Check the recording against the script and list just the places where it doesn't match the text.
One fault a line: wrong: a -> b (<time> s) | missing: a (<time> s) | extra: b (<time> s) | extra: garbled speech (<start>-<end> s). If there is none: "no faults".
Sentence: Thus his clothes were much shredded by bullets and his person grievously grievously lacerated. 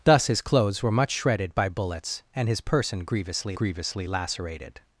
no faults